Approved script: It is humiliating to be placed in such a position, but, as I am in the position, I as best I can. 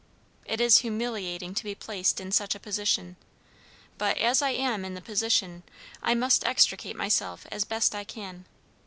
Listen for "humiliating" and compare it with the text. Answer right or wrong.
right